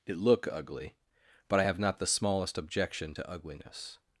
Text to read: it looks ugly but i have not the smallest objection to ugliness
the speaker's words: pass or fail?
fail